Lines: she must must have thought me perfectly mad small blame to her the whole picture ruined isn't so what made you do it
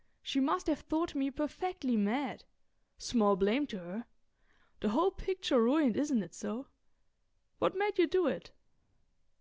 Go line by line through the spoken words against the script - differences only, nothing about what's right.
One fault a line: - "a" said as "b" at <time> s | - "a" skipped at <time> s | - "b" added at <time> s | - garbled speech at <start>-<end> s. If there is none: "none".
- "must" skipped at 0.7 s
- "it" added at 6.2 s